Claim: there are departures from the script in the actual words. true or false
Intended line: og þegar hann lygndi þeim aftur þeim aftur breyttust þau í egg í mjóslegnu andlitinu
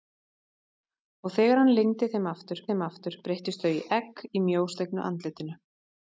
false